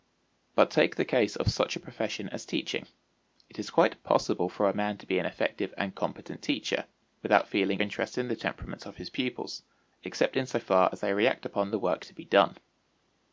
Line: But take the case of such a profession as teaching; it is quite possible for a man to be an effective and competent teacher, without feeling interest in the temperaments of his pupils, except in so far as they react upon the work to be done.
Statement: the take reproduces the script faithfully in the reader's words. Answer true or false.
true